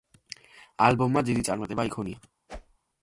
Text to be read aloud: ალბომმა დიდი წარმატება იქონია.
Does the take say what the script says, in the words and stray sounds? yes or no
no